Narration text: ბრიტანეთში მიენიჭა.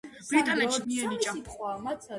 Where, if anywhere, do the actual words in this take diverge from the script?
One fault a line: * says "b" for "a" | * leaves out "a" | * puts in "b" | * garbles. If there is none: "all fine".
all fine